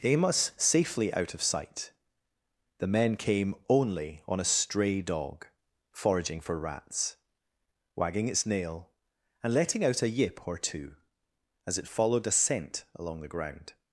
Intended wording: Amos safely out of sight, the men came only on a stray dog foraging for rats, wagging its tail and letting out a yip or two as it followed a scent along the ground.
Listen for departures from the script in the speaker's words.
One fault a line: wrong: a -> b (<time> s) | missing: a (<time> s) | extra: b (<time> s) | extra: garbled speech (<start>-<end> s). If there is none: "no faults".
wrong: tail -> nail (8.4 s)